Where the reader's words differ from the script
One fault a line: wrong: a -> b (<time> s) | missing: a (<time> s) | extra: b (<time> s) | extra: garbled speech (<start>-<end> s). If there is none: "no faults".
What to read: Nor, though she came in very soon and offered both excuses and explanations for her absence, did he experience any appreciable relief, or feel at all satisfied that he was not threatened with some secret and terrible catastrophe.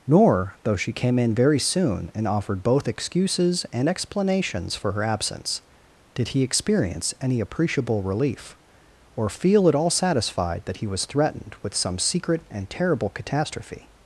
missing: not (11.1 s)